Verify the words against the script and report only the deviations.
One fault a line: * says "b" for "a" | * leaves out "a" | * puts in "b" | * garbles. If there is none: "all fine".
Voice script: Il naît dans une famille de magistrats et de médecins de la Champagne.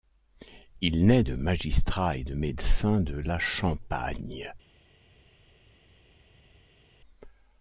* leaves out "dans une famille"